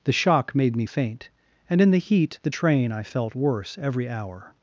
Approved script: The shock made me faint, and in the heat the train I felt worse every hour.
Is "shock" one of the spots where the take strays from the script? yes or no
no